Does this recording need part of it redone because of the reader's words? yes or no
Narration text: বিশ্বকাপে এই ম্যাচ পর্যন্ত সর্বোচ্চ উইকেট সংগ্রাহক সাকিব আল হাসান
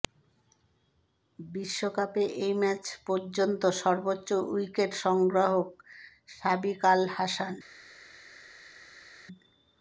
no